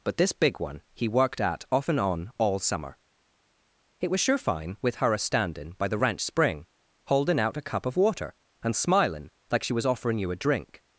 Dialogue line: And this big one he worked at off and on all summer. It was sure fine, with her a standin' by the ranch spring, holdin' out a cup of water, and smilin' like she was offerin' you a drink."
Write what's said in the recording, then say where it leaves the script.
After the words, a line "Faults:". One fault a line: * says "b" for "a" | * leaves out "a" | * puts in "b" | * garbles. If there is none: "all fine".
But this big one he worked at off and on all summer. It was sure fine, with her a standin' by the ranch spring, holdin' out a cup of water, and smilin' like she was offerin' you a drink."
Faults:
* says "But" for "And"